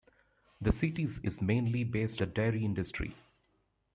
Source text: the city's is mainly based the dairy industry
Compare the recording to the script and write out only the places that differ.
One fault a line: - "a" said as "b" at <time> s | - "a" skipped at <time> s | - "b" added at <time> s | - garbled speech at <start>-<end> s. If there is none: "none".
none